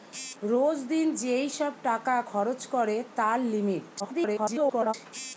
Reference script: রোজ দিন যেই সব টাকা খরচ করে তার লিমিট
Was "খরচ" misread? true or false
false